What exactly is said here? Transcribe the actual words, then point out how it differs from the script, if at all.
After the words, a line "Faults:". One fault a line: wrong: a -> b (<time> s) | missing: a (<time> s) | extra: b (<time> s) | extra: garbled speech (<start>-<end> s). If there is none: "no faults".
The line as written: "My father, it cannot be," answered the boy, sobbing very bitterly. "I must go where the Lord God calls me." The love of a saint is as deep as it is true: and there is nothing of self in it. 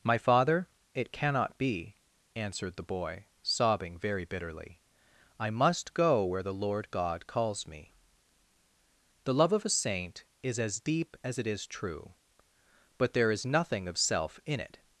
"My father, it cannot be," answered the boy, sobbing very bitterly. "I must go where the Lord God calls me." The love of a saint is as deep as it is true: but there is nothing of self in it.
Faults:
wrong: and -> but (13.0 s)